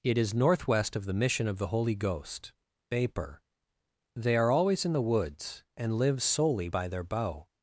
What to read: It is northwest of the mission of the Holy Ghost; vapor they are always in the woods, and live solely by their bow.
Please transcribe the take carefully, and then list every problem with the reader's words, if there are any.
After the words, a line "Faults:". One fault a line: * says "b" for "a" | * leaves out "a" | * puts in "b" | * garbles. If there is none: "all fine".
It is northwest of the mission of the Holy Ghost; vapor they are always in the woods, and live solely by their bow.
Faults:
all fine